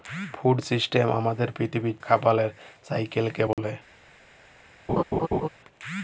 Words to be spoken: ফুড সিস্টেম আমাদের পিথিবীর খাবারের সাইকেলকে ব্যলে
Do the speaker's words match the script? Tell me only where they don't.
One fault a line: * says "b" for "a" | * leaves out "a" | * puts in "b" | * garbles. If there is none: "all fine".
all fine